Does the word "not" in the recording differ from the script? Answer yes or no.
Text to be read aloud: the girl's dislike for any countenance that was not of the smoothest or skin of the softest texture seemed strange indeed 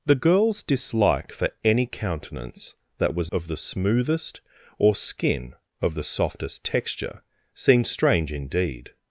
yes